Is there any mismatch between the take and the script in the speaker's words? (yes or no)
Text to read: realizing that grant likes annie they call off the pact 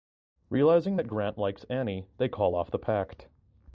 no